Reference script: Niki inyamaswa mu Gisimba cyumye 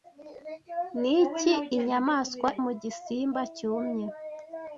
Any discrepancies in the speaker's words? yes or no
no